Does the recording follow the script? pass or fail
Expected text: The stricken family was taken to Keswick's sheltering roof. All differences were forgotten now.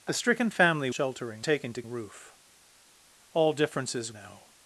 fail